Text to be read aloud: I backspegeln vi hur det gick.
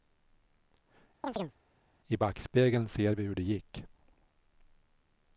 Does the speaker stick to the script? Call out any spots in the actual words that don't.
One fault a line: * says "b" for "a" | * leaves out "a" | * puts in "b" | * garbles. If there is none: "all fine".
* puts in "ser"